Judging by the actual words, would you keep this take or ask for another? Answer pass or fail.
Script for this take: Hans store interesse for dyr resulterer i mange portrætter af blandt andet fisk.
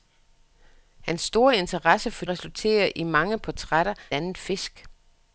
fail